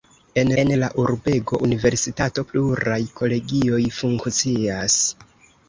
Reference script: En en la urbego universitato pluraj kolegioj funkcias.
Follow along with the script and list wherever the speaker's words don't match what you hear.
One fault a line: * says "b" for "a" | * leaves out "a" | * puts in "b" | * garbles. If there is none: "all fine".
all fine